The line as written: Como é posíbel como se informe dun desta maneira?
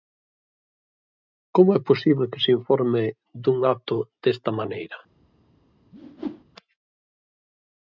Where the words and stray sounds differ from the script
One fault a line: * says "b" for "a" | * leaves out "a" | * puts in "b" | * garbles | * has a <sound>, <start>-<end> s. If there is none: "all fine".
* says "que" for "como"
* puts in "acto"
* has a whoosh, 5.9-6.4 s